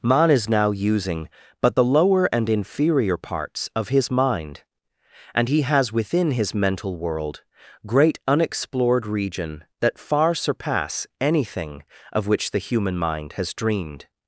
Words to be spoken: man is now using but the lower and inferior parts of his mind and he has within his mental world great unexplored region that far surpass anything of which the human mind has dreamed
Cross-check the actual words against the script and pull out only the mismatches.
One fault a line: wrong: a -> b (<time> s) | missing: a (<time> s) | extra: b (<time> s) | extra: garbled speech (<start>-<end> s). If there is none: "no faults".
no faults